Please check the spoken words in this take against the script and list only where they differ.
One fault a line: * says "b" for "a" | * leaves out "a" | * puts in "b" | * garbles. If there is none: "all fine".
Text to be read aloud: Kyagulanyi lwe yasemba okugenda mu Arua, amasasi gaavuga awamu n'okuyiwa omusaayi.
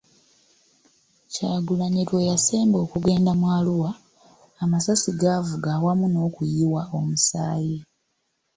all fine